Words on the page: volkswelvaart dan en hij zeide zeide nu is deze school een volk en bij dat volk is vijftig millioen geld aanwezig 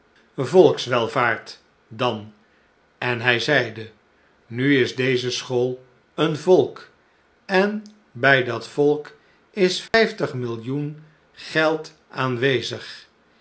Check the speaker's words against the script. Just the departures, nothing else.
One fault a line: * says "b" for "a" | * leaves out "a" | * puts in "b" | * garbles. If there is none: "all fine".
* leaves out "zeide"